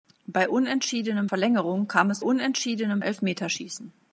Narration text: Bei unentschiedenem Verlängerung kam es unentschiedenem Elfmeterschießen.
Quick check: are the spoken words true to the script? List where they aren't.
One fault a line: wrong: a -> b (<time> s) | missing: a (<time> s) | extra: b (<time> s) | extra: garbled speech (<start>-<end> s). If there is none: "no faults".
no faults